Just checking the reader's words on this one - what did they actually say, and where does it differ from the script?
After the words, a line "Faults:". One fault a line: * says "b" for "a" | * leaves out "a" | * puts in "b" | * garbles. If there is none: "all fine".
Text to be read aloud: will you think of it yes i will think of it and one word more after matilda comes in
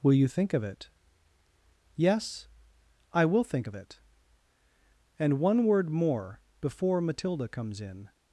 will you think of it yes i will think of it and one word more before matilda comes in
Faults:
* says "before" for "after"